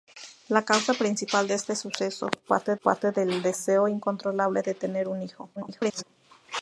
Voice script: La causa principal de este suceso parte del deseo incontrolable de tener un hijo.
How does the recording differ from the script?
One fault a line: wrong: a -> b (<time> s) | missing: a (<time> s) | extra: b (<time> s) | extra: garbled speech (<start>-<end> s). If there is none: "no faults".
extra: parte (2.8 s)
extra: garbled speech (5.6-6.0 s)